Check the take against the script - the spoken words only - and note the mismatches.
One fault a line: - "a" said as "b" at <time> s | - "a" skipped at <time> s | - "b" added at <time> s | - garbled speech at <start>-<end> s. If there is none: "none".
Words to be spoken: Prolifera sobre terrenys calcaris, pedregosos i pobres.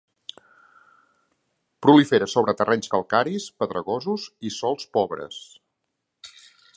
- "sòls" added at 4.6 s